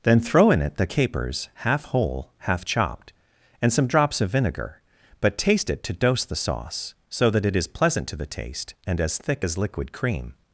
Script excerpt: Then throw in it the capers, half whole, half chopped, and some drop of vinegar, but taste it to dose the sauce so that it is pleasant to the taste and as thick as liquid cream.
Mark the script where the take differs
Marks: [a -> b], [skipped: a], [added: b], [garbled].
Then throw in it the capers, half whole, half chopped, and some [drop -> drops] of vinegar, but taste it to dose the sauce so that it is pleasant to the taste and as thick as liquid cream.